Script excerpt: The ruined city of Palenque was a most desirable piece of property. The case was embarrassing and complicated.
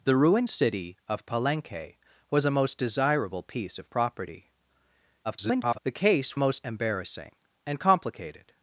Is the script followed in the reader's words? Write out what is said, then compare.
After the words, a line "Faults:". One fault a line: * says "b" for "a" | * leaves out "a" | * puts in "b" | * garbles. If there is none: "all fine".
The ruined city of Palenque was a most desirable piece of property. [garbled] The case most embarrassing and complicated.
Faults:
* garbles
* says "most" for "was"